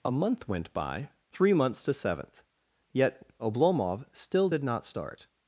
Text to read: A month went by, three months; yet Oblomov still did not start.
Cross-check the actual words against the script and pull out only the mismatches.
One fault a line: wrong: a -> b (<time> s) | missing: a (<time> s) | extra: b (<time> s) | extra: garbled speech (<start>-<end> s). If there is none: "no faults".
extra: to seventh (1.8 s)